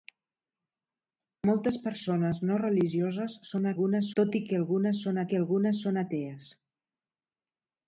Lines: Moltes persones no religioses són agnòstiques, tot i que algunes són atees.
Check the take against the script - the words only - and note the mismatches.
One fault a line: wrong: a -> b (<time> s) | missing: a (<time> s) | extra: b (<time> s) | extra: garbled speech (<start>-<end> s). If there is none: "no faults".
wrong: agnòstiques -> algunes (3.7 s)
extra: que algunes són (5.3 s)